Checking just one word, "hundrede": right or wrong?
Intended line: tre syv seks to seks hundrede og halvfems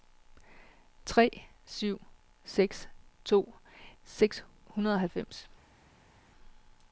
right